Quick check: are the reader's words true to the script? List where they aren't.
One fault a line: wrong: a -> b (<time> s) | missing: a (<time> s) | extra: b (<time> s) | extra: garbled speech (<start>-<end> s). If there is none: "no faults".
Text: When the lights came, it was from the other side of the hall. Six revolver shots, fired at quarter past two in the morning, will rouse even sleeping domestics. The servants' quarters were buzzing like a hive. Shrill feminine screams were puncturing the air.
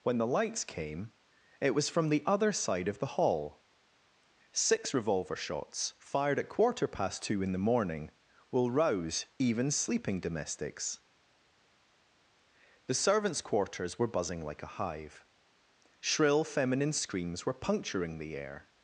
no faults